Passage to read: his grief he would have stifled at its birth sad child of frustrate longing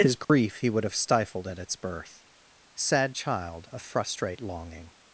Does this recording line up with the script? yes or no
yes